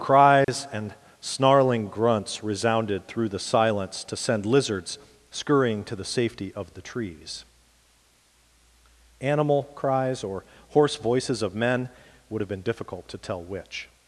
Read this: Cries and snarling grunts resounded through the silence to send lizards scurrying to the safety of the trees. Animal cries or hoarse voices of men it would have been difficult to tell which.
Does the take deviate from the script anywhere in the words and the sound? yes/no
yes